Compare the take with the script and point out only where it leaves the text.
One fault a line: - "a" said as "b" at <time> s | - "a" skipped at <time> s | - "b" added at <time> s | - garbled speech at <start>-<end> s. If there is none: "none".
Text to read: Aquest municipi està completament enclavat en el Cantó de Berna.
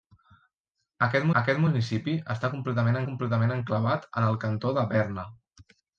- "aquest" added at 1.4 s
- "completament" added at 3.1 s